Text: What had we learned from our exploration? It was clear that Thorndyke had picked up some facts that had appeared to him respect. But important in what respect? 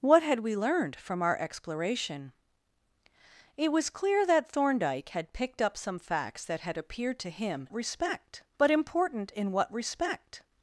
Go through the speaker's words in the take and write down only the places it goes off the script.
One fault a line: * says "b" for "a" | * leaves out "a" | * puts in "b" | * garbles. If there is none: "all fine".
all fine